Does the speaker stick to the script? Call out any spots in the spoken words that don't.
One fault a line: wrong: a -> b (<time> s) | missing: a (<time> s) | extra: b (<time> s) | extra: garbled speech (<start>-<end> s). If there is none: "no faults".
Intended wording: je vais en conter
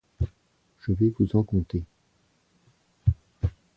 extra: vous (1.2 s)